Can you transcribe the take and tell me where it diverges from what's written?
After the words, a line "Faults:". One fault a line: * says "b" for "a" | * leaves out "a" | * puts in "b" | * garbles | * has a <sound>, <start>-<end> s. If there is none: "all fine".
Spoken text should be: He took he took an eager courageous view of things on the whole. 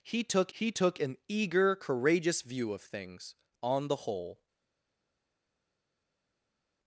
He took he took an eager courageous view of things on the whole.
Faults:
all fine